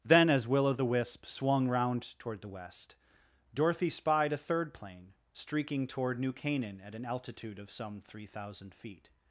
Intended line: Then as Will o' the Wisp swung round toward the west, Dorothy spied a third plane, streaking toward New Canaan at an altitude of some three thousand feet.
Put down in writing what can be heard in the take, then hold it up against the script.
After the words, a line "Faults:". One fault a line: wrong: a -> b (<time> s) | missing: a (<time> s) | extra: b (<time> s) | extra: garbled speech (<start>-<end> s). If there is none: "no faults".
Then as Will o' the Wisp swung round toward the west, Dorothy spied a third plane, streaking toward New Canaan at an altitude of some three thousand feet.
Faults:
no faults